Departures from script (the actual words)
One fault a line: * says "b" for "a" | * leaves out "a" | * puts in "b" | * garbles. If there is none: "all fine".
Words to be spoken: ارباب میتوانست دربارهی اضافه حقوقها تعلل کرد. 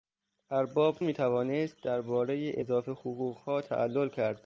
all fine